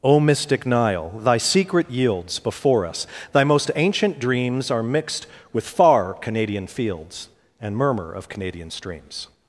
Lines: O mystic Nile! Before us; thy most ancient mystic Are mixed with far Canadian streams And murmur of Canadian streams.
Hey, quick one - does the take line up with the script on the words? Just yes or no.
no